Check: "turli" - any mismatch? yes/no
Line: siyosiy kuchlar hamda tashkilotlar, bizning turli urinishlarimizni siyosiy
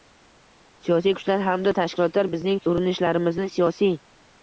yes